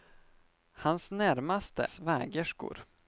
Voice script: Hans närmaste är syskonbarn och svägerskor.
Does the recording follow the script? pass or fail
fail